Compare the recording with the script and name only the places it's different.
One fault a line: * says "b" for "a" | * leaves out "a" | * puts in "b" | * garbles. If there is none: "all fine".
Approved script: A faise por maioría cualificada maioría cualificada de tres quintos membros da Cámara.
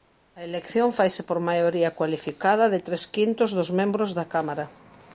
* puts in "elección"
* leaves out "maioría cualificada"
* puts in "dos"